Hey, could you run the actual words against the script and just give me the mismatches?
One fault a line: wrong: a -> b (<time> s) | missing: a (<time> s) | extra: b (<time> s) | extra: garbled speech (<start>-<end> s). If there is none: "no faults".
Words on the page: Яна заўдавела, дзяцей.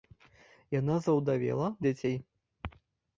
no faults